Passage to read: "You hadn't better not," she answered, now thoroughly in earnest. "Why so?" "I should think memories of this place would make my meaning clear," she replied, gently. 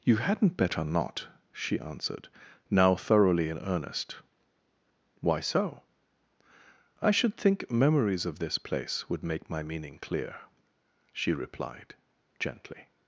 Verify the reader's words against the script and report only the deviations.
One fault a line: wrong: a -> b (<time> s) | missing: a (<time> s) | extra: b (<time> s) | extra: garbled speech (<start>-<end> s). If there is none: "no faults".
no faults